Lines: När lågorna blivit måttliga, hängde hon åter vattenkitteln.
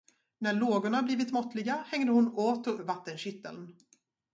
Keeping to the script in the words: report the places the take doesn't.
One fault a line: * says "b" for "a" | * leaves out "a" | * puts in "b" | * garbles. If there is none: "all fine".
all fine